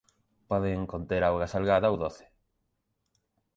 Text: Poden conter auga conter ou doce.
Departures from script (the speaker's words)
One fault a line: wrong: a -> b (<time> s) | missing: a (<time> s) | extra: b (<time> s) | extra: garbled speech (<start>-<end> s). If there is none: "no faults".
wrong: conter -> salgada (1.5 s)